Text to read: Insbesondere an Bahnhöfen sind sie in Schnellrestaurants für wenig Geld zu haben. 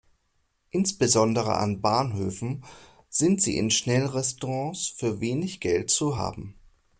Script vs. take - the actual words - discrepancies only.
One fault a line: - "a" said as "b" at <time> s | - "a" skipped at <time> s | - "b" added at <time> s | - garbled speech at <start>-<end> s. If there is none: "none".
none